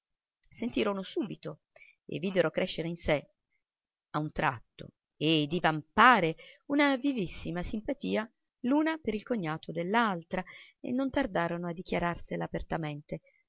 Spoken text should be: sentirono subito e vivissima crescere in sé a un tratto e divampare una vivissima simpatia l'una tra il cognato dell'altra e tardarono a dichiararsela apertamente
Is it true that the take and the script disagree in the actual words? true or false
true